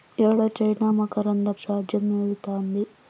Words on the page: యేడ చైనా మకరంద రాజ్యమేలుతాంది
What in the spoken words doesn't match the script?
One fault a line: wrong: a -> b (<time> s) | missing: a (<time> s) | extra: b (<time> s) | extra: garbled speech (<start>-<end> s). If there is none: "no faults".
no faults